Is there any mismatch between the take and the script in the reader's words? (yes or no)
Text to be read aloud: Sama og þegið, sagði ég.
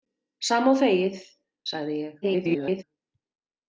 yes